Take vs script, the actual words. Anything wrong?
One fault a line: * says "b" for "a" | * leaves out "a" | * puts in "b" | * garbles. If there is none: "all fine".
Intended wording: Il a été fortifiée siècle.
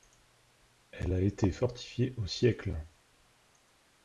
* says "Elle" for "Il"
* puts in "au"